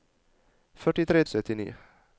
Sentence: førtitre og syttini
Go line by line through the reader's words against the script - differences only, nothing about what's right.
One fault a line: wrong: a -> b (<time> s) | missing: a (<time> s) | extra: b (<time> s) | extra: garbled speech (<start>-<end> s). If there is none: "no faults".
no faults